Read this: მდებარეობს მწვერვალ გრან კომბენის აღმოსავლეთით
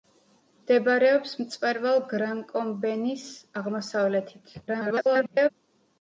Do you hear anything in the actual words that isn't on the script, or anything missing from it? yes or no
yes